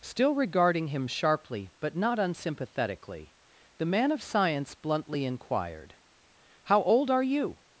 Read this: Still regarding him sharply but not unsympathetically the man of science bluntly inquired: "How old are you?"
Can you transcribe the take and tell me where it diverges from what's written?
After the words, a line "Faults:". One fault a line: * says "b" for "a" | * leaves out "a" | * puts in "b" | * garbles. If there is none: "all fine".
Still regarding him sharply but not unsympathetically the man of science bluntly inquired: "How old are you?"
Faults:
all fine